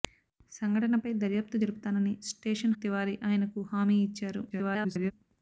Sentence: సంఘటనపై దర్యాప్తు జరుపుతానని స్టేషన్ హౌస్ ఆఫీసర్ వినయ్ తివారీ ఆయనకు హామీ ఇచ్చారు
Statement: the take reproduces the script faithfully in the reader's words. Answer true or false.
false